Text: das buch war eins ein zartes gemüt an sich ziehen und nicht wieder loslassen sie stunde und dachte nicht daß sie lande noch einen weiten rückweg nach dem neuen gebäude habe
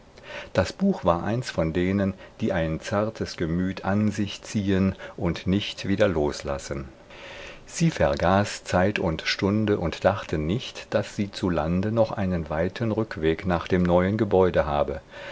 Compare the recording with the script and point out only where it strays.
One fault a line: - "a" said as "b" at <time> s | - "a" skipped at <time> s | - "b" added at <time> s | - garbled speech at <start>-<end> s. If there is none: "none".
- "von denen die" added at 1.5 s
- "vergaß zeit und" added at 7.9 s
- "zu" added at 11.3 s